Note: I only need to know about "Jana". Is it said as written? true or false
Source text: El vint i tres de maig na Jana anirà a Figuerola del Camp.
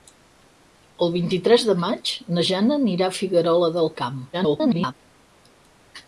true